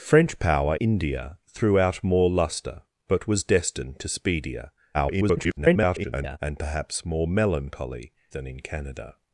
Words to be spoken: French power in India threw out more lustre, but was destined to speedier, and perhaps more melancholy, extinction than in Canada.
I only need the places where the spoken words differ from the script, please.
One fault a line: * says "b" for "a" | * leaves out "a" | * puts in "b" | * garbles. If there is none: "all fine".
* leaves out "in"
* garbles
* leaves out "extinction"